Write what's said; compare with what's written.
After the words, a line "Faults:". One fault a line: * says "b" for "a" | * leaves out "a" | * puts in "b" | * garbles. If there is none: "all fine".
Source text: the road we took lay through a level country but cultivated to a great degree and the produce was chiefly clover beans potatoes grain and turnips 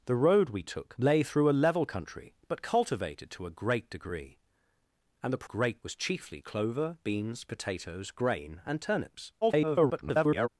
the road we took lay through a level country but cultivated to a great degree and the great was chiefly clover beans potatoes grain and turnips [garbled]
Faults:
* says "great" for "produce"
* garbles